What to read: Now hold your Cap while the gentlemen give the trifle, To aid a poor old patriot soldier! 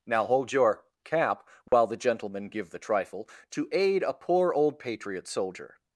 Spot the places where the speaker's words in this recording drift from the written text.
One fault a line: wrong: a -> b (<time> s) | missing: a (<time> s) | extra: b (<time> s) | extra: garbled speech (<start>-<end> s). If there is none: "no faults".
no faults